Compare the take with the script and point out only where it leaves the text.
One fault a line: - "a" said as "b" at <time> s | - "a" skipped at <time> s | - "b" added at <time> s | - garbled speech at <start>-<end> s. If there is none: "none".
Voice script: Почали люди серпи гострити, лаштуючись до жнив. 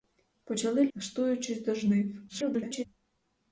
- "люди серпи гострити" skipped at 0.9 s
- garbled speech at 2.3-2.9 s